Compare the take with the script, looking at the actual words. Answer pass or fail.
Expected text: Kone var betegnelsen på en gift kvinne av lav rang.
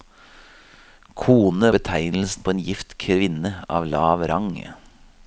fail